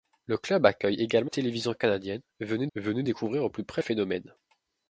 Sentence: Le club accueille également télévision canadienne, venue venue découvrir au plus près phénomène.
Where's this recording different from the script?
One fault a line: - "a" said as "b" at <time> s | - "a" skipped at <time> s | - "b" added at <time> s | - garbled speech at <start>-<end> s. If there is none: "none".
none